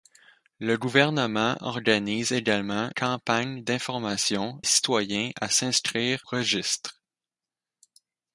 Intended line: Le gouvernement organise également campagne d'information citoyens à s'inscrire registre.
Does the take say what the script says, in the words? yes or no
yes